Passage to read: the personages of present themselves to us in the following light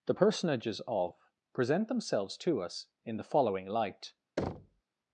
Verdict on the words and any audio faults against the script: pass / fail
fail